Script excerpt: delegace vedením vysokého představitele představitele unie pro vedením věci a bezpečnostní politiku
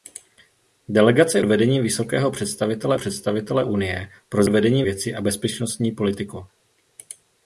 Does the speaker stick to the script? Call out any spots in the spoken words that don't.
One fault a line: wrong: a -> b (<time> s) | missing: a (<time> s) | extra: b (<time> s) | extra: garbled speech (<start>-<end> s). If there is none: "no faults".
no faults